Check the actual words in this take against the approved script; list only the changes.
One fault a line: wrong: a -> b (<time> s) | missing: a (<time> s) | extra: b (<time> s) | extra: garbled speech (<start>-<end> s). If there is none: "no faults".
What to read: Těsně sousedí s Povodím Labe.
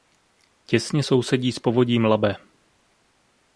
no faults